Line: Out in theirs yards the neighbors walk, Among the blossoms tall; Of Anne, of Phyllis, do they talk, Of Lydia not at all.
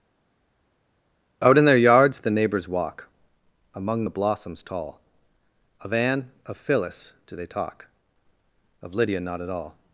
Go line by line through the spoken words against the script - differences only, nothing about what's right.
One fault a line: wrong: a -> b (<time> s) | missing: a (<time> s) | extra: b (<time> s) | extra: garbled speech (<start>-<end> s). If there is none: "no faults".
wrong: theirs -> their (1.6 s)